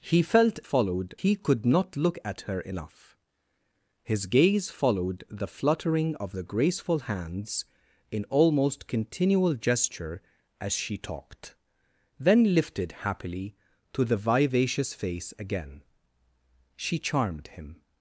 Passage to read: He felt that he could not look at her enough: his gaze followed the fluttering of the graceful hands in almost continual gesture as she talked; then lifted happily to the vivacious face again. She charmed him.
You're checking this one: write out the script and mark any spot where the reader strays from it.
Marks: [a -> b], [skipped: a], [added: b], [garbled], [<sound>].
He felt [that -> followed] he could not look at her enough: his gaze followed the fluttering of the graceful hands in almost continual gesture as she talked; then lifted happily to the vivacious face again. She charmed him.